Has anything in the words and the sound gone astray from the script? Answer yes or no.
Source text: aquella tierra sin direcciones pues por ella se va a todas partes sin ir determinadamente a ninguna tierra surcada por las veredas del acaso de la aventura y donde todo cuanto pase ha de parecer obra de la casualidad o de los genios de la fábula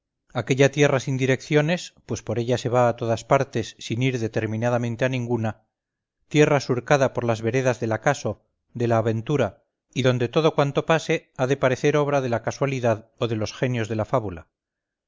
no